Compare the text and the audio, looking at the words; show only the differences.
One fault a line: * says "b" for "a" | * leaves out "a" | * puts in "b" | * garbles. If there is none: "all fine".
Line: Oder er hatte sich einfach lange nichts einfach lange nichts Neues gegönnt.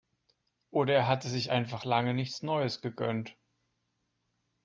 * leaves out "einfach lange nichts"